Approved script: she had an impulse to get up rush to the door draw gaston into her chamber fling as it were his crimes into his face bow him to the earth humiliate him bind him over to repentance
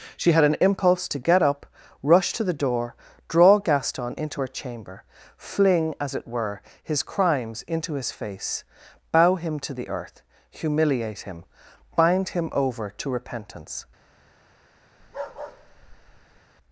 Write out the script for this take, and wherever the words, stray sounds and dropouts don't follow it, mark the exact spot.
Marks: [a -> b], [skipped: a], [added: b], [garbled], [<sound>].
she had an impulse to get up rush to the door draw gaston into her chamber fling as it were his crimes into his face bow him to the earth humiliate him bind him over to repentance [bark]